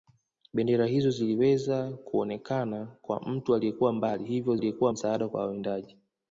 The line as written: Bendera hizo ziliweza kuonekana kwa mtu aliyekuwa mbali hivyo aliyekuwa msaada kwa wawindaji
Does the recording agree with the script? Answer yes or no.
yes